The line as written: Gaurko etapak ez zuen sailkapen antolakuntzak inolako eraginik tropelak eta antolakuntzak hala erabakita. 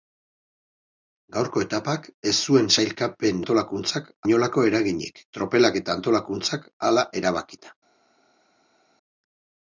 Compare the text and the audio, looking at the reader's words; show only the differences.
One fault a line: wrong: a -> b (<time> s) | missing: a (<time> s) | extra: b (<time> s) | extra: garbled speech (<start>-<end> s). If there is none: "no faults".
no faults